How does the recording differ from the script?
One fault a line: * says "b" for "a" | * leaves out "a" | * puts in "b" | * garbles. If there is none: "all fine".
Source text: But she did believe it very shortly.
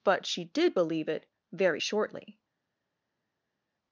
all fine